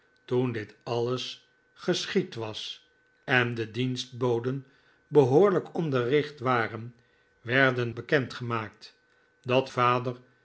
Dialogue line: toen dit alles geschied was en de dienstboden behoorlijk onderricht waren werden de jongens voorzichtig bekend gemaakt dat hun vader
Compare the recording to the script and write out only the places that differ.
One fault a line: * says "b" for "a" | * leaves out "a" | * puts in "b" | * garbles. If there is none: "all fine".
* leaves out "de jongens voorzichtig"
* leaves out "hun"